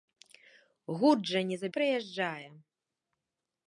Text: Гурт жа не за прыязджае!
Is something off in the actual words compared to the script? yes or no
no